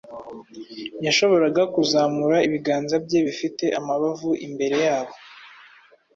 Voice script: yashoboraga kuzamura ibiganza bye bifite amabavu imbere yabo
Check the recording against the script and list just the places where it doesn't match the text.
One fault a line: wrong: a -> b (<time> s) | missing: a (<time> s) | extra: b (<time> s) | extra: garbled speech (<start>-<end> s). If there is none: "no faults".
no faults